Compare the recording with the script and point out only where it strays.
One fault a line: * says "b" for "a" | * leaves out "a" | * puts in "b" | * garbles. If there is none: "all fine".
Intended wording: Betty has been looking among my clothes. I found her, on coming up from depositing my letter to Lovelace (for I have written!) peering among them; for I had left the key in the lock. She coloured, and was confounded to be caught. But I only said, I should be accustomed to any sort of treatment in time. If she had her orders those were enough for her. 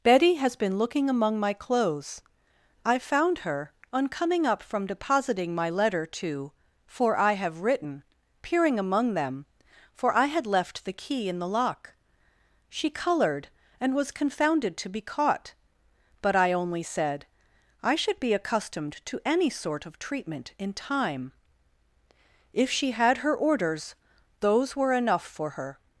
* leaves out "Lovelace"